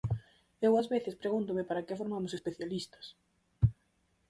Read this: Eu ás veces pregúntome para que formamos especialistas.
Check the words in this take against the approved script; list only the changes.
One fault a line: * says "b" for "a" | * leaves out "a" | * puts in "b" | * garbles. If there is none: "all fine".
all fine